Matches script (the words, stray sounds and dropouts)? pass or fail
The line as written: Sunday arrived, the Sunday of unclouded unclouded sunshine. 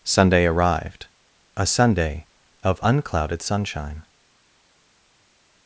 fail